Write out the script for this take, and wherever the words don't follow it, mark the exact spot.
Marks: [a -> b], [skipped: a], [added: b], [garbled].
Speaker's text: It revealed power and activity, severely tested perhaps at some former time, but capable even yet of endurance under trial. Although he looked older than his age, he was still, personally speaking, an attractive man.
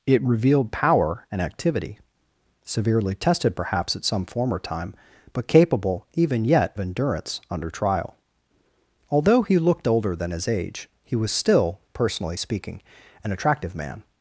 It revealed power and activity, severely tested perhaps at some former time, but capable even yet [skipped: of] endurance under trial. Although he looked older than his age, he was still, personally speaking, an attractive man.